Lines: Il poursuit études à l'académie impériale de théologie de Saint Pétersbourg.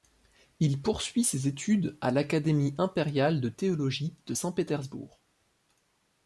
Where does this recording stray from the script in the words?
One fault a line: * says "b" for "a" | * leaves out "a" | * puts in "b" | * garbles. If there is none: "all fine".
* puts in "ses"